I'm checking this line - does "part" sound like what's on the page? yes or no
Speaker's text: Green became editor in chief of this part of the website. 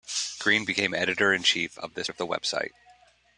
no